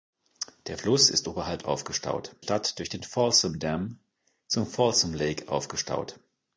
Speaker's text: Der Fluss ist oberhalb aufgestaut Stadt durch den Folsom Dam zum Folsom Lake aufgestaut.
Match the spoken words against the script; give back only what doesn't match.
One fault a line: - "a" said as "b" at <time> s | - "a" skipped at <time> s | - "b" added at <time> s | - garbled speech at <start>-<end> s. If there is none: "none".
none